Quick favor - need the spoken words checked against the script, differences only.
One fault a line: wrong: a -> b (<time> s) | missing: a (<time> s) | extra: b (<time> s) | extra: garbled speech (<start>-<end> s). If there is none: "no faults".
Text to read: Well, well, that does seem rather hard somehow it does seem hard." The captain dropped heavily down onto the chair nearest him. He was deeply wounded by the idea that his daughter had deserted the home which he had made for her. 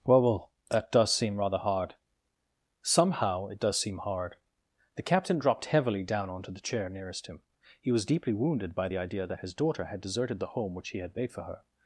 no faults